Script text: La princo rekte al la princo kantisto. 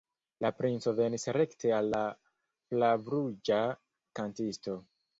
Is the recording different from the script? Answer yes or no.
yes